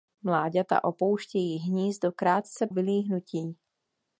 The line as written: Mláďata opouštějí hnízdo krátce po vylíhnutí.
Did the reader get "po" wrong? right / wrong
wrong